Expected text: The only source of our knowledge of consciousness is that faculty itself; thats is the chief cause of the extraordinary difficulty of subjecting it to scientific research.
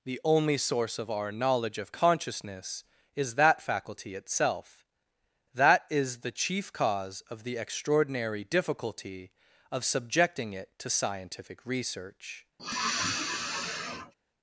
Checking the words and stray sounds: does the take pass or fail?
fail